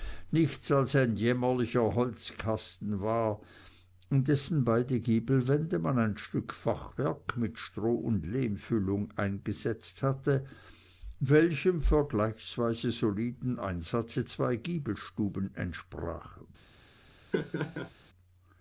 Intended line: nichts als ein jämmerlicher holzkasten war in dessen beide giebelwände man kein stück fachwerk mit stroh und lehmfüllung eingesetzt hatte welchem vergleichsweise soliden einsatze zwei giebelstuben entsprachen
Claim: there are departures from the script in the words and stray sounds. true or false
true